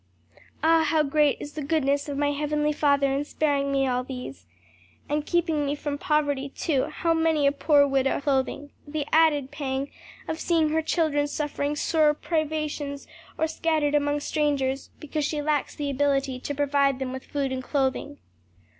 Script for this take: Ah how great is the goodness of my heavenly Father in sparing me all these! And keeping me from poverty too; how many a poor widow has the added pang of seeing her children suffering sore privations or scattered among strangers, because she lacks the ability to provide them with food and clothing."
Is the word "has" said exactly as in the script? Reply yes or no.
no